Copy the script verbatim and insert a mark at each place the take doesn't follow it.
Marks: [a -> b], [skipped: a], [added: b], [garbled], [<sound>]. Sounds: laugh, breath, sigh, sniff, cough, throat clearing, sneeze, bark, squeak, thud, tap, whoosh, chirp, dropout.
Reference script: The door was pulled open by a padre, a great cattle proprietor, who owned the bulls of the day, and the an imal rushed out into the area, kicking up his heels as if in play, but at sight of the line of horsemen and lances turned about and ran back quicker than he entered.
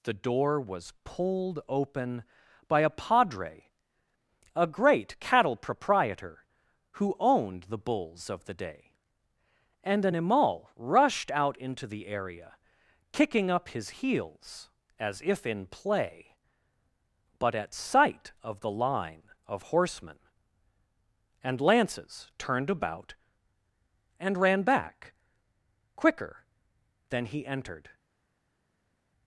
The door was pulled open by a padre, a great cattle proprietor, who owned the bulls of the day, and [skipped: the] an imal rushed out into the area, kicking up his heels as if in play, but at sight of the line of horsemen and lances turned about and ran back quicker than he entered.